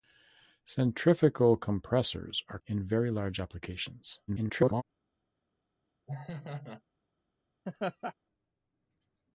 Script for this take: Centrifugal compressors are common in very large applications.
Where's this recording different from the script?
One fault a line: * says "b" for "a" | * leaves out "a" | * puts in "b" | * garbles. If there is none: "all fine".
* leaves out "common"
* garbles